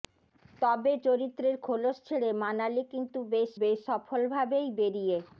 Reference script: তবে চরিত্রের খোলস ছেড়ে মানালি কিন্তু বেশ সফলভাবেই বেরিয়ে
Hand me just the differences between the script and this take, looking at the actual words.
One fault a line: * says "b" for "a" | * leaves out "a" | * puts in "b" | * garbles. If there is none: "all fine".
* puts in "বেশ"